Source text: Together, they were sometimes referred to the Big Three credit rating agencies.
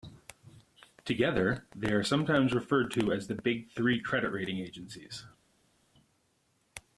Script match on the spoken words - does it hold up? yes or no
no